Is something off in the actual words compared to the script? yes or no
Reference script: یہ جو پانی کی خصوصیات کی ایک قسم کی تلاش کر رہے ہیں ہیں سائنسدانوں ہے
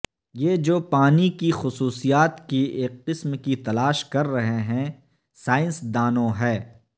yes